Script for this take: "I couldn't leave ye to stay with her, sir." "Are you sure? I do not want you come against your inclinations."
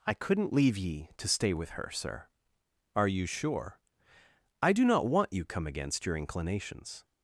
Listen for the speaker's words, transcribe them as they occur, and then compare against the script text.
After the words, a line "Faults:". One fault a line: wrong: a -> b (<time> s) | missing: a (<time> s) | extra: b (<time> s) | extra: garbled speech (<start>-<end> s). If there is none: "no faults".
"I couldn't leave ye to stay with her, sir." "Are you sure? I do not want you come against your inclinations."
Faults:
no faults